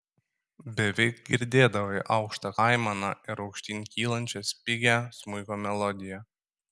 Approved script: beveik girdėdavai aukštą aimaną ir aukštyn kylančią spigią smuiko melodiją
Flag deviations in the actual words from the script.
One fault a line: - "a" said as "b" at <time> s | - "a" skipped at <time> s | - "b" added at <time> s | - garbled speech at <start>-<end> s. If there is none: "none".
none